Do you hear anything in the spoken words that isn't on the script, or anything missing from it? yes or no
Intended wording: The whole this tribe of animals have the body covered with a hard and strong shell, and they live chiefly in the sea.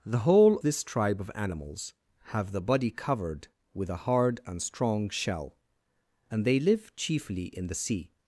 no